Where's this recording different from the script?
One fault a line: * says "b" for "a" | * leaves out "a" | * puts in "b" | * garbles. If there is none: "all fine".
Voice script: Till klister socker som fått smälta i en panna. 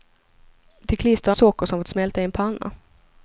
all fine